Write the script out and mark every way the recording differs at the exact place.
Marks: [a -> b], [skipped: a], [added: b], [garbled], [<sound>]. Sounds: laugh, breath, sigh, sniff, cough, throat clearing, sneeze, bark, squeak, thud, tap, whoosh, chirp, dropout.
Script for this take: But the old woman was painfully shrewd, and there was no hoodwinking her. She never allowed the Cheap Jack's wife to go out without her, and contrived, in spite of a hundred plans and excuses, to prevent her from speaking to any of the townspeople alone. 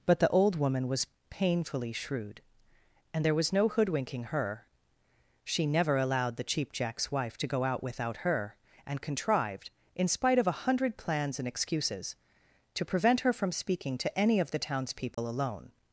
But the old woman was painfully shrewd, and there was no hoodwinking her. She never allowed the Cheap Jack's wife to go out without her, and contrived, in spite of a hundred plans and excuses, to prevent her from speaking to any of the townspeople [dropout] alone.